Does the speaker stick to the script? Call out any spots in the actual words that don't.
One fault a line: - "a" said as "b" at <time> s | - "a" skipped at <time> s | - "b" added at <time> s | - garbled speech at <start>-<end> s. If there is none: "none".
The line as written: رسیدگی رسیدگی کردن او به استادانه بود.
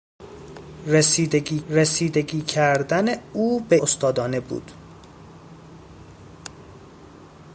none